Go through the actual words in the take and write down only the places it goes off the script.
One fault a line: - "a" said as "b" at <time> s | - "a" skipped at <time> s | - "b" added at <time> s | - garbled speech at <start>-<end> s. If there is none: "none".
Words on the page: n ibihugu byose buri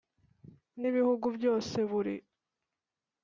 none